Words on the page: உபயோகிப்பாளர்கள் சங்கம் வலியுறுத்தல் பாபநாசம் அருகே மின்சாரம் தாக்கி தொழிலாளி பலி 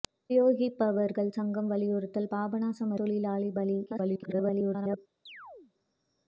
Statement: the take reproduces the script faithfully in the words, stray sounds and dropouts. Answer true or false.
false